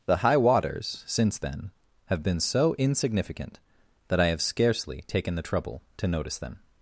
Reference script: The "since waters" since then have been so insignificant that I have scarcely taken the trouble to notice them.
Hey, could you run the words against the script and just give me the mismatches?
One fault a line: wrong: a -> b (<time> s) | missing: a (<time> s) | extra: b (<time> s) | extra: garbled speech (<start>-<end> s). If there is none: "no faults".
wrong: since -> high (0.2 s)